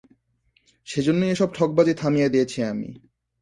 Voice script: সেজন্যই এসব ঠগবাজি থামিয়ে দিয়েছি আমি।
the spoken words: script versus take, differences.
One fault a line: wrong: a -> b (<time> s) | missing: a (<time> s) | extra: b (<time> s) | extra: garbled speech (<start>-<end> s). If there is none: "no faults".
no faults